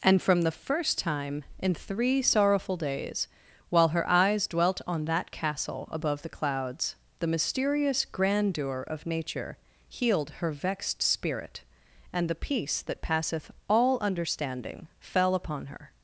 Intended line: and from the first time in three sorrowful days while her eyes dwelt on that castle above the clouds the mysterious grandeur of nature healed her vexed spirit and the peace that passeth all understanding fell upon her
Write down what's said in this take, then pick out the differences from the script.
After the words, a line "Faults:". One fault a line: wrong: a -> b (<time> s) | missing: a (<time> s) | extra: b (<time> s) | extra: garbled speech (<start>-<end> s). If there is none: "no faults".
and from the first time in three sorrowful days while her eyes dwelt on that castle above the clouds the mysterious grandeur of nature healed her vexed spirit and the peace that passeth all understanding fell upon her
Faults:
no faults